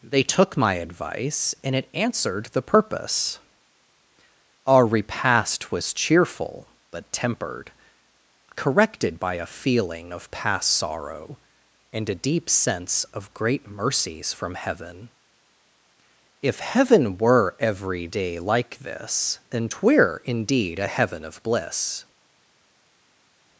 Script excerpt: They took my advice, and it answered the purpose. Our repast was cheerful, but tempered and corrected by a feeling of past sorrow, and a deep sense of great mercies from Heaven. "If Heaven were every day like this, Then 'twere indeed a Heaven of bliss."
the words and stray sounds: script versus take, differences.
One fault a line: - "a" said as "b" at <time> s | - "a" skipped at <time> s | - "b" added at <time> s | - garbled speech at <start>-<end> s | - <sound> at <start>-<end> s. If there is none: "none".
- "and" skipped at 7.7 s